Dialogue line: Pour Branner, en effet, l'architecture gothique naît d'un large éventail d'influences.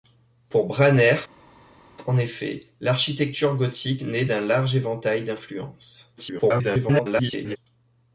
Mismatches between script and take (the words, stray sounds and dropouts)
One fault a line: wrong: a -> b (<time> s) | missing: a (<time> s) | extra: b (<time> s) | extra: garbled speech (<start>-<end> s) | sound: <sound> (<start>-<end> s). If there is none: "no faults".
extra: garbled speech (6.2-7.6 s)